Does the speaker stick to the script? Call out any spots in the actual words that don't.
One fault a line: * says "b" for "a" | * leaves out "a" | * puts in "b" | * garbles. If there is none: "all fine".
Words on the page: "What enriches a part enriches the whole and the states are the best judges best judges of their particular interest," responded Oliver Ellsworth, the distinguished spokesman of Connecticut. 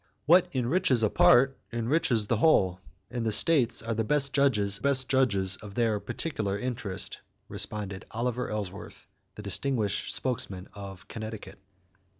all fine